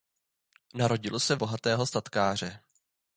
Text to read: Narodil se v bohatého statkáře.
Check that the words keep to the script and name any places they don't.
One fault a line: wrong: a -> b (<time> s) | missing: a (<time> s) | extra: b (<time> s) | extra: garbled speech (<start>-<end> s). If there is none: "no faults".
no faults